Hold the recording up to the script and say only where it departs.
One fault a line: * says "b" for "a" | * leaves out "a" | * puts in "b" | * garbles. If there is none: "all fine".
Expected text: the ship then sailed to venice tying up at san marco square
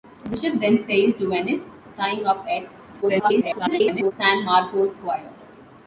* garbles